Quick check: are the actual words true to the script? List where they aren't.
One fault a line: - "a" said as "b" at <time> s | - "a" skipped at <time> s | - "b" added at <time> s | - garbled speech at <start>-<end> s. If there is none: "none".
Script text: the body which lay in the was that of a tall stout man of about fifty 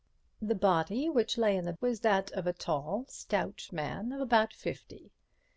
none